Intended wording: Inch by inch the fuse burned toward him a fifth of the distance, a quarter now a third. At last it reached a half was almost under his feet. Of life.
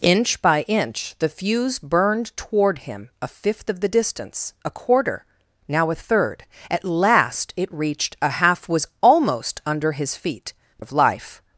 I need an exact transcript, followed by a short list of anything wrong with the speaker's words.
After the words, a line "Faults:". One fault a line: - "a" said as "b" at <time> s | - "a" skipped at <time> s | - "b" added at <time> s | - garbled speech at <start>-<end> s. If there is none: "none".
Inch by inch the fuse burned toward him a fifth of the distance, a quarter now a third. At last it reached a half was almost under his feet. Of life.
Faults:
none